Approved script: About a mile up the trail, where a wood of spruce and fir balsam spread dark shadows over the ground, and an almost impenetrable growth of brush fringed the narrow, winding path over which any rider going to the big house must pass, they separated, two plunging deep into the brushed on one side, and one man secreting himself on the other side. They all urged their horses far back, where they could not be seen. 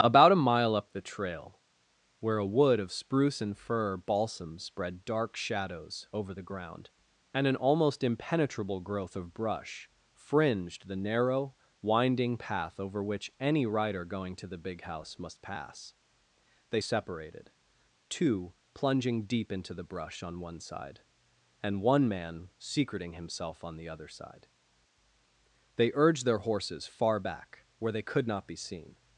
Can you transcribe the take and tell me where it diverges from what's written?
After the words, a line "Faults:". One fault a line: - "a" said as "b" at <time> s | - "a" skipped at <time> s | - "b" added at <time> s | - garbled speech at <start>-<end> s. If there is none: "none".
About a mile up the trail, where a wood of spruce and fir balsam spread dark shadows over the ground, and an almost impenetrable growth of brush fringed the narrow, winding path over which any rider going to the big house must pass, they separated, two plunging deep into the brush on one side, and one man secreting himself on the other side. They urged their horses far back, where they could not be seen.
Faults:
- "brushed" said as "brush" at 19.8 s
- "all" skipped at 25.9 s